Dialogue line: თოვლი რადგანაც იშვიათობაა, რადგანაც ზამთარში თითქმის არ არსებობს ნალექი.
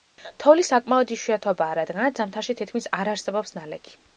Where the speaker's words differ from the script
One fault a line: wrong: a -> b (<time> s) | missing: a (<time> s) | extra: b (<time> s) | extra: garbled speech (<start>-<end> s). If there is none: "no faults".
wrong: რადგანაც -> საკმაოდ (0.7 s)